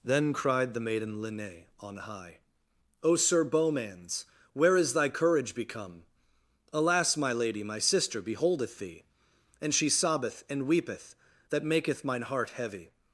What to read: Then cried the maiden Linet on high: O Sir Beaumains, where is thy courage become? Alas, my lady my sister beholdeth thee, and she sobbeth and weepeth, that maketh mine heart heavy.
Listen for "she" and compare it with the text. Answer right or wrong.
right